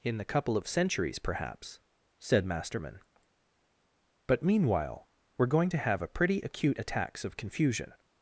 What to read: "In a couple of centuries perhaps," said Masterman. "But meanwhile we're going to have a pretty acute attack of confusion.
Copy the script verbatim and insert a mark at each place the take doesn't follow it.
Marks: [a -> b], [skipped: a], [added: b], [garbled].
"In [a -> the] couple of centuries perhaps," said Masterman. "But meanwhile we're going to have a pretty acute [attack -> attacks] of confusion.